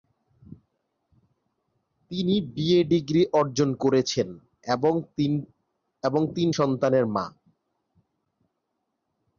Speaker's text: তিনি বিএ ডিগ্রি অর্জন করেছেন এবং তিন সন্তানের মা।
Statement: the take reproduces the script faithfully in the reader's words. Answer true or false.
true